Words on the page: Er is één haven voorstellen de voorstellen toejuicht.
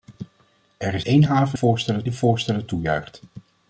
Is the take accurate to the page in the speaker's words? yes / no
yes